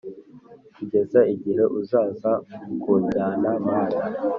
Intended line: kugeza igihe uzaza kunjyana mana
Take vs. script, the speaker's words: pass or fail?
pass